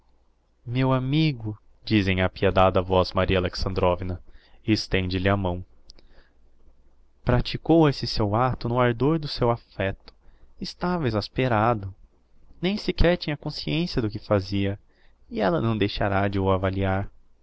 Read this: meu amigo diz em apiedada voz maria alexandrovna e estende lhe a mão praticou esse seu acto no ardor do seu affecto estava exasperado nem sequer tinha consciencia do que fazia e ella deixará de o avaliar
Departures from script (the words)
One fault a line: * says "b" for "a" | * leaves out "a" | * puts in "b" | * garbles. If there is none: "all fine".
* puts in "não"